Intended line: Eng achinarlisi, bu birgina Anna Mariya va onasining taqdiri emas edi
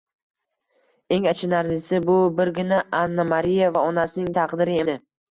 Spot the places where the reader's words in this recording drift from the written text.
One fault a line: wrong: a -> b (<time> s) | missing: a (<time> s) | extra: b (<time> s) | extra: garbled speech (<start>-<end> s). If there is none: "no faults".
missing: emas (4.8 s)